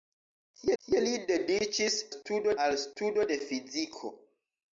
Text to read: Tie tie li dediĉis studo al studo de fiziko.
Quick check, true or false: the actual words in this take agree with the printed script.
true